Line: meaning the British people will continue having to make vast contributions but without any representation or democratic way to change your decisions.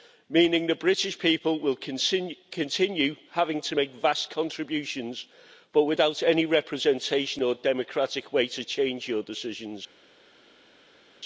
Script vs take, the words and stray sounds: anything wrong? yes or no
no